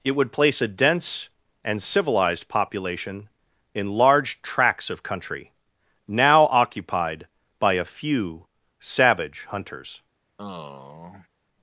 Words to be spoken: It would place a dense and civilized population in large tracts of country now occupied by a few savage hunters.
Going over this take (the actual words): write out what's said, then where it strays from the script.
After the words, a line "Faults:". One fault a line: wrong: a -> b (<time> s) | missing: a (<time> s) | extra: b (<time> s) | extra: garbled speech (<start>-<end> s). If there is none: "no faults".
It would place a dense and civilized population in large tracts of country now occupied by a few savage hunters.
Faults:
no faults